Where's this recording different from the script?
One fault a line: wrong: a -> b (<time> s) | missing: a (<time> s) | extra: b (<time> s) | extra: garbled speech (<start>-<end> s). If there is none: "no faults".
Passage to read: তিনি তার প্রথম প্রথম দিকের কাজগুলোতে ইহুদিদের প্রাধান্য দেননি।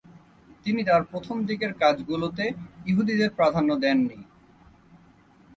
missing: প্রথম (1.4 s)